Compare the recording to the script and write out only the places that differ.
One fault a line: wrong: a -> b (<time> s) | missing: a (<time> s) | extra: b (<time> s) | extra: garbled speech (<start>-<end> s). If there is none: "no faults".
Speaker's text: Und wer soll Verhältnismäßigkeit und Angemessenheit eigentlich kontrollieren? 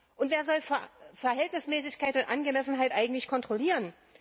no faults